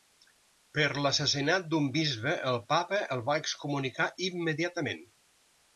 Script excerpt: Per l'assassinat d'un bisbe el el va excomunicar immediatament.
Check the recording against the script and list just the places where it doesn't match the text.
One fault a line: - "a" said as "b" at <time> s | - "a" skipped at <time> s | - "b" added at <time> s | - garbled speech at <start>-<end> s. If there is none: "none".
- "papa" added at 2.8 s